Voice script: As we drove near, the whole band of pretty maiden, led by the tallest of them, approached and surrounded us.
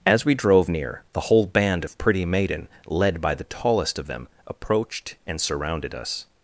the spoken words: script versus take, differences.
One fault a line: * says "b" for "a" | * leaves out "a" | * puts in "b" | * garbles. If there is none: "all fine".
all fine